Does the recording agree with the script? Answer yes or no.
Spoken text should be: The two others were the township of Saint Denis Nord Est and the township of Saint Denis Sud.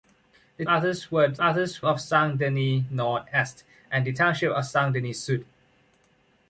no